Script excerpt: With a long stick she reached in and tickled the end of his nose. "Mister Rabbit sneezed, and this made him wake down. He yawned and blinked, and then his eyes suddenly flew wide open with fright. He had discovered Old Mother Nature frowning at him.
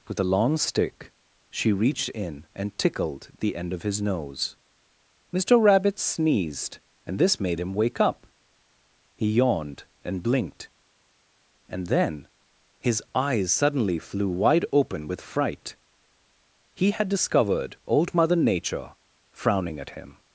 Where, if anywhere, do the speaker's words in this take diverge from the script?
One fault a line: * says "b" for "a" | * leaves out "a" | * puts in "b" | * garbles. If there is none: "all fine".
* says "up" for "down"